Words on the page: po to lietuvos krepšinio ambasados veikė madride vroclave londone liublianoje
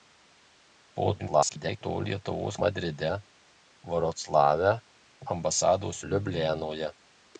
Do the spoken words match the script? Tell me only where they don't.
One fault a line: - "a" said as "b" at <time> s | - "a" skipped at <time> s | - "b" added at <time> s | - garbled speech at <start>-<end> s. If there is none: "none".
- garbled speech at 1.2-1.8 s
- "krepšinio ambasados veikė" skipped at 2.6 s
- "londone" said as "ambasados" at 5.3 s